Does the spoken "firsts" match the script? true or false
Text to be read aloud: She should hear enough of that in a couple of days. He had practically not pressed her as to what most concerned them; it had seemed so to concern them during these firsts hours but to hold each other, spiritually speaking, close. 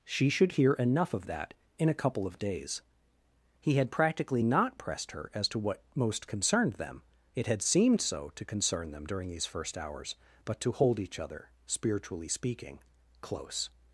false